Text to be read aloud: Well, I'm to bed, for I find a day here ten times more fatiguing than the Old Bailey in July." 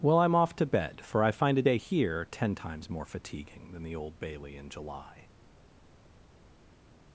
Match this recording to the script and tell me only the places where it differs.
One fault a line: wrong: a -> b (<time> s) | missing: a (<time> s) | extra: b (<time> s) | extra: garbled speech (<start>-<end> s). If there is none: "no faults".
extra: off (0.3 s)